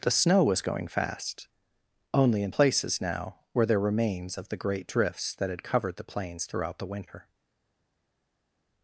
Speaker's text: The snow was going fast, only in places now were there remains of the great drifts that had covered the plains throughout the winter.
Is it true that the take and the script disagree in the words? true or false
false